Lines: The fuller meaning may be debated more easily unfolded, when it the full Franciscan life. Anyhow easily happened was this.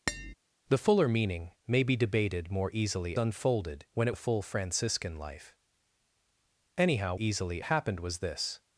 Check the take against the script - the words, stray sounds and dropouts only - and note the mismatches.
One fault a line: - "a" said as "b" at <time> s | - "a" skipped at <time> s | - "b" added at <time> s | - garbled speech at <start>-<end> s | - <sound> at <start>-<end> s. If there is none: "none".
- tap at 0.1-0.3 s